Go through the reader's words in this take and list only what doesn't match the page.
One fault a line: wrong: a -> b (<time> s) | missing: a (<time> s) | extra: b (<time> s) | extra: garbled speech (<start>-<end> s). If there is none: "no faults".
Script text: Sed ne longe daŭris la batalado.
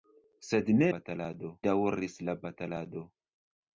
wrong: longe -> batalado (1.0 s)